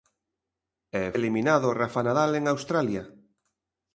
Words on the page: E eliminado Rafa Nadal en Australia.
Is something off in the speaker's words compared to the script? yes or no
no